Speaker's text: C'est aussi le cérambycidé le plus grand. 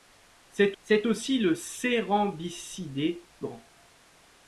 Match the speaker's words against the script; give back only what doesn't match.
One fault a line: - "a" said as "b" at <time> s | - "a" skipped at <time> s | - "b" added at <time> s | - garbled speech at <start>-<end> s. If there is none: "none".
- "c'est" added at 0.8 s
- "le plus" skipped at 3.2 s